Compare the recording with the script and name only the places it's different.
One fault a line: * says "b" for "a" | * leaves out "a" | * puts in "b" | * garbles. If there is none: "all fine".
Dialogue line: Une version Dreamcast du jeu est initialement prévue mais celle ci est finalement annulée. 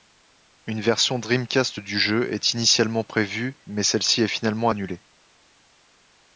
all fine